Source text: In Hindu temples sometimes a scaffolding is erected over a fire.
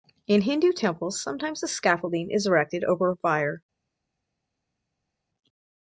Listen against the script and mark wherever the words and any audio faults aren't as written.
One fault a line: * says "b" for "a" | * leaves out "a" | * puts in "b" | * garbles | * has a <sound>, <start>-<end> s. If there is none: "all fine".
all fine